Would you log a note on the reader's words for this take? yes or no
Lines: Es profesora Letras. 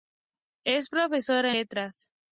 no